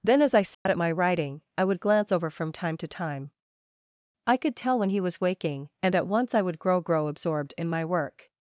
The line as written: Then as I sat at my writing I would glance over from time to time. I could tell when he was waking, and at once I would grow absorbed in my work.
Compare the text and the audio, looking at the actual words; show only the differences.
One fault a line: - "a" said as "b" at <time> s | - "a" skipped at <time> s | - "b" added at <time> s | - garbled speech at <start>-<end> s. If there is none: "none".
- "grow" added at 6.8 s